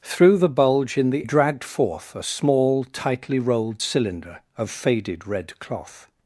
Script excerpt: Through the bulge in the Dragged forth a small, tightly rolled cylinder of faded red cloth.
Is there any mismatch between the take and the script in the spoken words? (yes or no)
no